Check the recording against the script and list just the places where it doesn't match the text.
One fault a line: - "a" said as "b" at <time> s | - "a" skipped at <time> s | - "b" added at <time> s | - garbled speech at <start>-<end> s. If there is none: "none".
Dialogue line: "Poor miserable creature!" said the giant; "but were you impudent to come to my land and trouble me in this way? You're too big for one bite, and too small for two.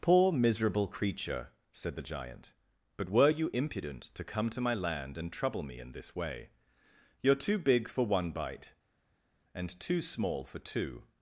none